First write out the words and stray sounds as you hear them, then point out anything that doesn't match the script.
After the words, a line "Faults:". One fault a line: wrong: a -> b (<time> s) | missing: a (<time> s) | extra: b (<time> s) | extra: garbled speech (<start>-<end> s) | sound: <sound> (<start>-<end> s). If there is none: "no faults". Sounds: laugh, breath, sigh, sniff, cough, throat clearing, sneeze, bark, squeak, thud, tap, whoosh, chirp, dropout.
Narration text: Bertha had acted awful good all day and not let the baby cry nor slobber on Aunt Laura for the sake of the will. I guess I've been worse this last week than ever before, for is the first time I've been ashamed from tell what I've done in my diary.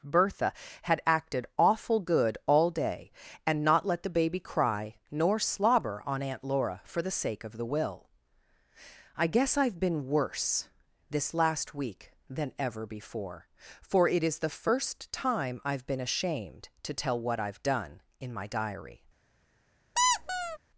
Bertha had acted awful good all day and not let the baby cry nor slobber on Aunt Laura for the sake of the will. I guess I've been worse this last week than ever before, for it is the first time I've been ashamed to tell what I've done in my diary.
Faults:
extra: it (14.1 s)
wrong: from -> to (16.8 s)
sound: squeak (20.0-20.6 s)